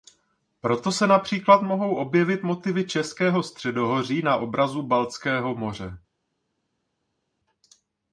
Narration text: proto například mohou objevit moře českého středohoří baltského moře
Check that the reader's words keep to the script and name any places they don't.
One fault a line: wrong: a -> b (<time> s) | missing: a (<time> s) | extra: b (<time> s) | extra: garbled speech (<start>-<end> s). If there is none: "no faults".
extra: se (0.9 s)
wrong: moře -> motivy (2.4 s)
extra: na obrazu (4.2 s)